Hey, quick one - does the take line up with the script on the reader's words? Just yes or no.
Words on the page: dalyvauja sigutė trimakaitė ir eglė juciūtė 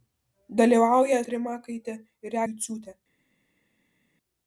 no